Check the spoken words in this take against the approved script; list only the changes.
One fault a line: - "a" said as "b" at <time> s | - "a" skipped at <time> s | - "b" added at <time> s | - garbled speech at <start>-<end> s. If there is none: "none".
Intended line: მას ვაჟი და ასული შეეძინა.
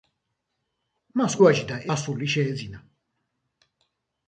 none